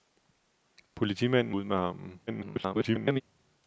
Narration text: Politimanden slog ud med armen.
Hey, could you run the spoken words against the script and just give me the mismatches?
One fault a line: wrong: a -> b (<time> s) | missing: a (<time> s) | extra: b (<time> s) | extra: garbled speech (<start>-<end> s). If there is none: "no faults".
missing: slog (1.6 s)
extra: garbled speech (2.3-3.2 s)